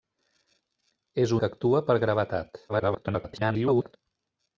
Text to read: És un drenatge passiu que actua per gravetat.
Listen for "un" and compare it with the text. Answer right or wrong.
wrong